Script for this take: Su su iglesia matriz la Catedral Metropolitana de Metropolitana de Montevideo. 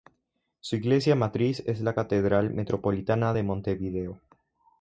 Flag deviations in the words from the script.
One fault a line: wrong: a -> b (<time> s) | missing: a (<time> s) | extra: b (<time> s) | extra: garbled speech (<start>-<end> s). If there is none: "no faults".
missing: su (0.8 s)
extra: es (1.7 s)
missing: Metropolitana de (3.4 s)